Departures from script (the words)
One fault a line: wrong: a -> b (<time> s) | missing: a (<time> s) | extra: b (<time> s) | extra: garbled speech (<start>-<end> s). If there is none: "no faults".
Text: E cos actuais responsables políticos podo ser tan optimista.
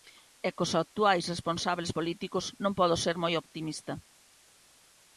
extra: non (2.6 s)
wrong: tan -> moi (3.2 s)